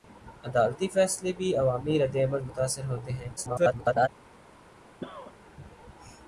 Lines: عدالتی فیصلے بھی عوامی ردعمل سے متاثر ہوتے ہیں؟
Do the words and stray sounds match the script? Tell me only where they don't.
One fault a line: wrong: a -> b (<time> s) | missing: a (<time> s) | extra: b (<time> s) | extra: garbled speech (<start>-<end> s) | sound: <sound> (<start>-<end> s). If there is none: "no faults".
missing: سے (2.4 s)
extra: garbled speech (3.4-4.1 s)
sound: cough (5.0-5.4 s)